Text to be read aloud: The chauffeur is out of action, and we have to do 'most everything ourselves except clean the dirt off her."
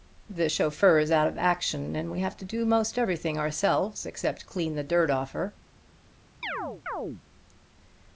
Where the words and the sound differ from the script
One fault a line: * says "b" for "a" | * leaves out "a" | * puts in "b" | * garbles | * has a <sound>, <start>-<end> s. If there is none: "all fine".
* has a chirp, 6.4-7.2 s